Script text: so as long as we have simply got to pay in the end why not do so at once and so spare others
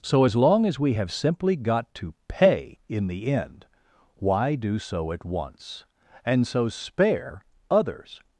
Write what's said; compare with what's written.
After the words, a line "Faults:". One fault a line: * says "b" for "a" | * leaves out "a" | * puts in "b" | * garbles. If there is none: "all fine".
so as long as we have simply got to pay in the end why do so at once and so spare others
Faults:
* leaves out "not"